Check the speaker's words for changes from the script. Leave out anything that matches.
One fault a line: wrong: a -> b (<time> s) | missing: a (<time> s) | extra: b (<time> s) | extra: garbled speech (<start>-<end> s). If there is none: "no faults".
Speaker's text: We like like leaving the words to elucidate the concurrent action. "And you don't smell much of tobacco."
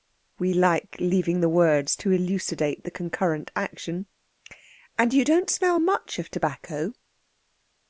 missing: like (0.9 s)